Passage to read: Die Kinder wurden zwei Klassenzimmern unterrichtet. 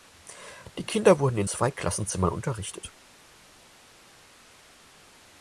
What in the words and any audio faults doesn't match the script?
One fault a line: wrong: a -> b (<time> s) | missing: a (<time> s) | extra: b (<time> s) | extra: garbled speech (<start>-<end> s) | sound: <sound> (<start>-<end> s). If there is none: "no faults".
extra: in (1.4 s)